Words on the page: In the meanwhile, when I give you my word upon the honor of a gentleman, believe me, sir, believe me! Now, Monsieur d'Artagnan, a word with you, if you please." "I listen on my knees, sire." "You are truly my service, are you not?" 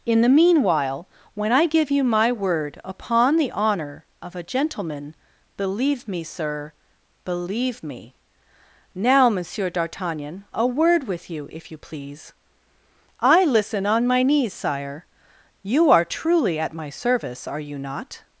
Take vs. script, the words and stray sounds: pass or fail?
fail